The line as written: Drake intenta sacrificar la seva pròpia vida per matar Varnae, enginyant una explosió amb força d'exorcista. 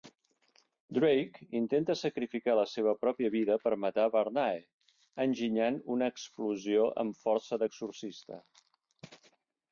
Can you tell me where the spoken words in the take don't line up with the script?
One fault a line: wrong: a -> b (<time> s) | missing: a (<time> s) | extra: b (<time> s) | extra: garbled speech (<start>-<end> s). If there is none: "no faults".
no faults